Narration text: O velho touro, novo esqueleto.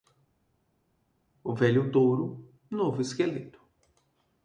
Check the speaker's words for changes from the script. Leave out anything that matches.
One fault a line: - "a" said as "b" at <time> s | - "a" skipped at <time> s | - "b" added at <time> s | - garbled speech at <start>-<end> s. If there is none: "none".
none